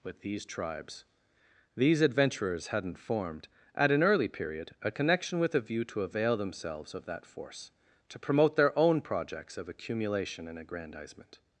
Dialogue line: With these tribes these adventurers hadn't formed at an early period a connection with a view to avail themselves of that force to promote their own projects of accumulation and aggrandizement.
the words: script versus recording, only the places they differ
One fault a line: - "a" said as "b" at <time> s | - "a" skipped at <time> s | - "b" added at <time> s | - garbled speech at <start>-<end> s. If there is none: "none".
none